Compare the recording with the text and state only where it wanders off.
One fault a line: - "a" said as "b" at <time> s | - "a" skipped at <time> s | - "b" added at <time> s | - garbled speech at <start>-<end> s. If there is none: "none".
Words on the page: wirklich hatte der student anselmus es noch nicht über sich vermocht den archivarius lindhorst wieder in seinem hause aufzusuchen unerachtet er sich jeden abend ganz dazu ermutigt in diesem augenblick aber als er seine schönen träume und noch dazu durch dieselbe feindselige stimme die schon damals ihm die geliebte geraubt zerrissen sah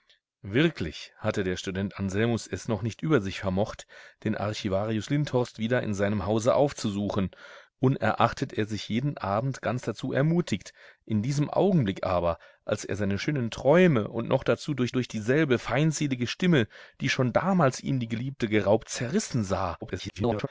- "durch" added at 14.9 s
- garbled speech at 19.8-20.5 s